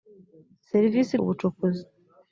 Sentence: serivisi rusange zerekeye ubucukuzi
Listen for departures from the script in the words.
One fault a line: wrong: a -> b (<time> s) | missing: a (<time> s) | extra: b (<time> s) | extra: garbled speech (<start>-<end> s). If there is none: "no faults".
missing: rusange zerekeye (1.1 s)